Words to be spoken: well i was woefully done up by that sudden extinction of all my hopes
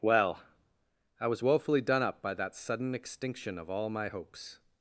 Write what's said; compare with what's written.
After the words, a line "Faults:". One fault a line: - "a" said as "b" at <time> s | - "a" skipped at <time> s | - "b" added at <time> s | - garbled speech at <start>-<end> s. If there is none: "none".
well i was woefully done up by that sudden extinction of all my hopes
Faults:
none